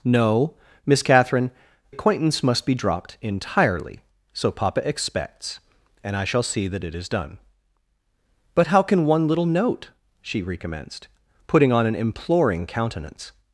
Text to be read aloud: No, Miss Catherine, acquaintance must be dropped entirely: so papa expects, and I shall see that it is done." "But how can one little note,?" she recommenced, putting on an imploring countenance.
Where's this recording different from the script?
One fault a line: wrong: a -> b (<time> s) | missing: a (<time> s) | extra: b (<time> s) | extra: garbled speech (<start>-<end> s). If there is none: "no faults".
no faults